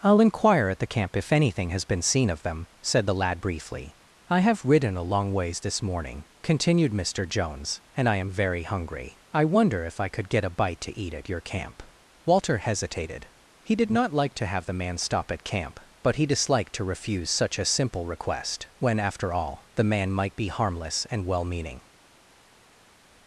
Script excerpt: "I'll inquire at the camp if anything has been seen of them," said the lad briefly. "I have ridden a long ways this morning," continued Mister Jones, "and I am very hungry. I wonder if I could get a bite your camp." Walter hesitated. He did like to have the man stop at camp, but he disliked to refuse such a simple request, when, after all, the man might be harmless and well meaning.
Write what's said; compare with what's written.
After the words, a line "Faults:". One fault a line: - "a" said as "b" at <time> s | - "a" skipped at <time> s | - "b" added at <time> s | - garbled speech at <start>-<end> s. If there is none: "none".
"I'll inquire at the camp if anything has been seen of them," said the lad briefly. "I have ridden a long ways this morning," continued Mister Jones, "and I am very hungry. I wonder if I could get a bite to eat at your camp." Walter hesitated. He did not like to have the man stop at camp, but he disliked to refuse such a simple request, when, after all, the man might be harmless and well meaning.
Faults:
- "to eat at" added at 10.8 s
- "not" added at 13.9 s